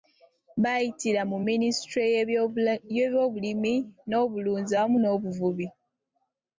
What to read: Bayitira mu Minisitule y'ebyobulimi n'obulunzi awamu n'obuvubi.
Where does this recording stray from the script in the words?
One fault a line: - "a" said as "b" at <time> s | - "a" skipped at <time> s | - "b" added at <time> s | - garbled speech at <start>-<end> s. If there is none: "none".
none